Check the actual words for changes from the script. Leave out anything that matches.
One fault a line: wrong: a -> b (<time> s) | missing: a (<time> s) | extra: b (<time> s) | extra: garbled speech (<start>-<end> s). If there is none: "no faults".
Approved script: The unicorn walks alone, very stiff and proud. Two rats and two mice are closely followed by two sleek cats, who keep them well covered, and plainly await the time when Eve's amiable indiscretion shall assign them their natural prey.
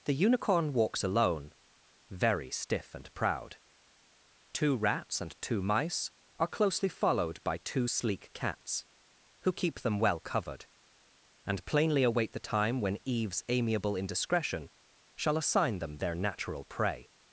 no faults